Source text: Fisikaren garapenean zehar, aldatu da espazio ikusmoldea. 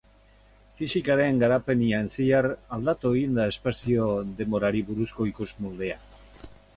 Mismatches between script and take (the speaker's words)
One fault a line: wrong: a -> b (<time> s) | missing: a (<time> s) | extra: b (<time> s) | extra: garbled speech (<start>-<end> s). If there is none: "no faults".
extra: egin (3.2 s)
extra: denborari buruzko (4.4 s)